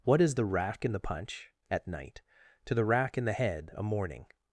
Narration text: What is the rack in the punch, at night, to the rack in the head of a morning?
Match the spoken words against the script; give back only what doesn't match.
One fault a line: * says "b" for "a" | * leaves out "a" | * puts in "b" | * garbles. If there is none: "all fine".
* leaves out "of"